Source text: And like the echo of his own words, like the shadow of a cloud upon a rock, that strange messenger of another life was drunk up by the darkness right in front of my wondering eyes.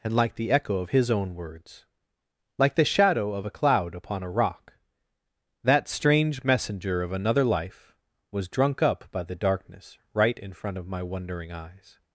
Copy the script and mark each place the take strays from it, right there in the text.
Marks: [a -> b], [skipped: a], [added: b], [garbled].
And like the echo of his own words, like the shadow of a cloud upon a rock, that strange messenger of another life was drunk up by the darkness right in front of my wondering eyes.